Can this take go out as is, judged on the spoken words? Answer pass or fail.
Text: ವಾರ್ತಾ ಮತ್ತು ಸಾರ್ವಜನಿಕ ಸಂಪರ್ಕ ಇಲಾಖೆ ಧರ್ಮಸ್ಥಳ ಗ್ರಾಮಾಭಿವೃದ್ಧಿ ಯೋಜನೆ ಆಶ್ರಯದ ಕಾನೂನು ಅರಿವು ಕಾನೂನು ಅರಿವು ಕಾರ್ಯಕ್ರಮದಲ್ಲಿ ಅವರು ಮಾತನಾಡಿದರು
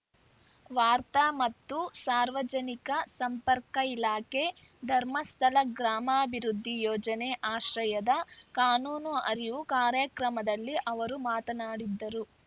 fail